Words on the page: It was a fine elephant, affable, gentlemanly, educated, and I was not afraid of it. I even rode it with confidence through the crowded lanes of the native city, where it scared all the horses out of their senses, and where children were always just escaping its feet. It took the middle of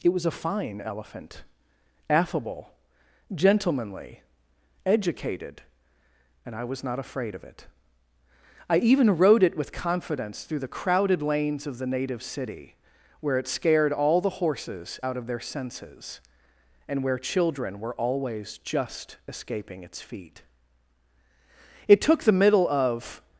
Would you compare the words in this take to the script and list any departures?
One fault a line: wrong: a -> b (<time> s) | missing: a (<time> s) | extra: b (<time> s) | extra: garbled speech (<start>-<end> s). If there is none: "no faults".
no faults